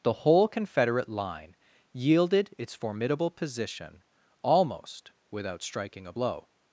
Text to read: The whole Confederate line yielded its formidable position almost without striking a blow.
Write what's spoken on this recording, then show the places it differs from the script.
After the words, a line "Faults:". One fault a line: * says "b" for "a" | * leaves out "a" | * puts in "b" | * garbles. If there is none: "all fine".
The whole Confederate line yielded its formidable position almost without striking a blow.
Faults:
all fine